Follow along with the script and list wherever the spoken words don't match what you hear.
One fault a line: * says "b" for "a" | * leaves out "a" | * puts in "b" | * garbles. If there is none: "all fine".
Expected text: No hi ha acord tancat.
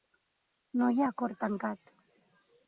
all fine